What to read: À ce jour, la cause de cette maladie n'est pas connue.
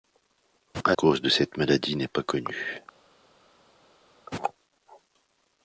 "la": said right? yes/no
no